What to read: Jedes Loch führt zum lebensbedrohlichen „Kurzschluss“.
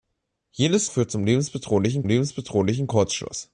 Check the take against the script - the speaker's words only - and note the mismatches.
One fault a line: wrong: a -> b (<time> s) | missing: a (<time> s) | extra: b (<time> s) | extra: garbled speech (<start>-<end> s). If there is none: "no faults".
missing: Loch (0.9 s)
extra: lebensbedrohlichen (2.1 s)